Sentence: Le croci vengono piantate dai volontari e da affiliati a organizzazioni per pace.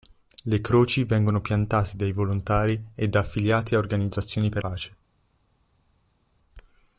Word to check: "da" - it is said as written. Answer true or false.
true